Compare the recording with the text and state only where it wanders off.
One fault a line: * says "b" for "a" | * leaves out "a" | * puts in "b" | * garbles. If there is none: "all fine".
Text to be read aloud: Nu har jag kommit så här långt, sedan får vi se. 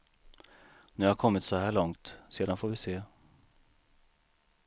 all fine